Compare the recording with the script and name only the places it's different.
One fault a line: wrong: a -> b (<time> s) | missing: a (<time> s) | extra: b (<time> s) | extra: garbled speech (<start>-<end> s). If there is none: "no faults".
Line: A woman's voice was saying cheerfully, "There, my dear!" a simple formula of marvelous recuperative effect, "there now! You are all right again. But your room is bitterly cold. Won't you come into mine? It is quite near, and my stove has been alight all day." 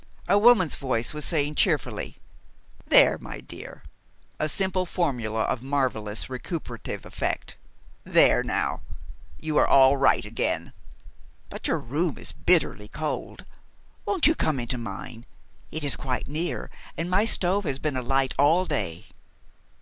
no faults